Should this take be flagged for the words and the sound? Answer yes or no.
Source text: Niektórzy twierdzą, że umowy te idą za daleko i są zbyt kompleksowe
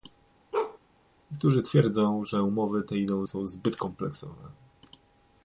yes